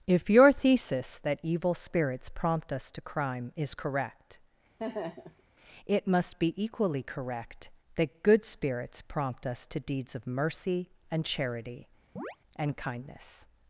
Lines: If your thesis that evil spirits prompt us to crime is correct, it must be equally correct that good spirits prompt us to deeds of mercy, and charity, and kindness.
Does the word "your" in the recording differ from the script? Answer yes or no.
no